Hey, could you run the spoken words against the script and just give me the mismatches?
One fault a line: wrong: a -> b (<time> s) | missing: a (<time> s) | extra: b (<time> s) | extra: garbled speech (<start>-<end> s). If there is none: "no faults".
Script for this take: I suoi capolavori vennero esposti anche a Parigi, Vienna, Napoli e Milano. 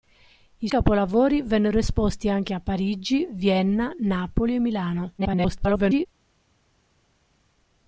missing: suoi (0.7 s)
extra: garbled speech (5.2-6.1 s)